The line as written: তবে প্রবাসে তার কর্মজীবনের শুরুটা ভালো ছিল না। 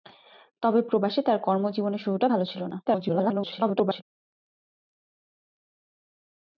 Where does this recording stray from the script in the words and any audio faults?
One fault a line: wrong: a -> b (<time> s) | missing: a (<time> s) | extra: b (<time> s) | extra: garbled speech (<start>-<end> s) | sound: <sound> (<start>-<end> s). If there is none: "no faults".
extra: garbled speech (2.9-4.0 s)